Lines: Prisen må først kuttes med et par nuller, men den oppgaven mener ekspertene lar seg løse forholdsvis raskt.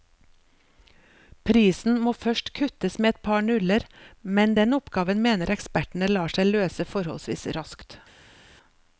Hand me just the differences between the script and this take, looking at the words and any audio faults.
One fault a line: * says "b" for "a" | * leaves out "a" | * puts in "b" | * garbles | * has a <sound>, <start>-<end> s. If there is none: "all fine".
all fine